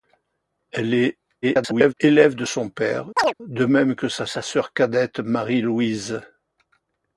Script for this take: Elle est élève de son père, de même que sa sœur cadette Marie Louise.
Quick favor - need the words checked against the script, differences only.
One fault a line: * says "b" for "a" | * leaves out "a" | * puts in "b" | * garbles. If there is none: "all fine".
* garbles
* puts in "sa"